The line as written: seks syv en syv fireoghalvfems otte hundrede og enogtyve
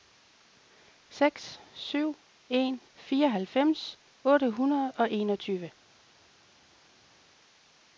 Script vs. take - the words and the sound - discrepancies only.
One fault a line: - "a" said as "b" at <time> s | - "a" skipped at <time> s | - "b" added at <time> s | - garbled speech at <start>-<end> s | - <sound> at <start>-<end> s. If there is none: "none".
- "syv" skipped at 2.8 s